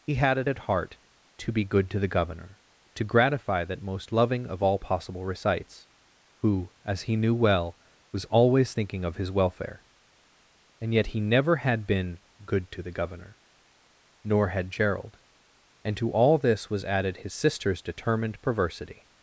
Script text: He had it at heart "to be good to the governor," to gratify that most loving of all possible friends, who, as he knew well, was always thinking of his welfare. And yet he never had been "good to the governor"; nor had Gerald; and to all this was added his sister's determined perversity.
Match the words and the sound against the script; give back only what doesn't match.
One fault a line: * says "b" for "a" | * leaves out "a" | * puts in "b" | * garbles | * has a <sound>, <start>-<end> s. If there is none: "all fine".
* says "recites" for "friends"